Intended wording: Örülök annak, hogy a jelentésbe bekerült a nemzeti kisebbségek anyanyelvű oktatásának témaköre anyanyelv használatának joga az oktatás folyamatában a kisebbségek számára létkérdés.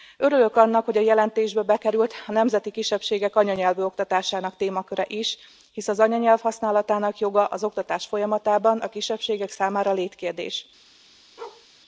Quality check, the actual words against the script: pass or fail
fail